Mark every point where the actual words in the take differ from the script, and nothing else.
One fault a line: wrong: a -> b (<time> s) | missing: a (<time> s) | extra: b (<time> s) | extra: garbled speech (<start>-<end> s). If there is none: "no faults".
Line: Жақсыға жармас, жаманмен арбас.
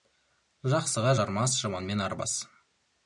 no faults